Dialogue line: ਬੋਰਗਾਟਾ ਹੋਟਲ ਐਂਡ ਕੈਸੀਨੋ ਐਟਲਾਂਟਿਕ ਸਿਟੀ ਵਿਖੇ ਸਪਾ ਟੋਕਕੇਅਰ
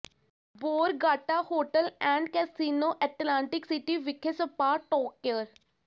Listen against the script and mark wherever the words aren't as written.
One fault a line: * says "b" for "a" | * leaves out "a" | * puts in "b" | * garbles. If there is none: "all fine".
all fine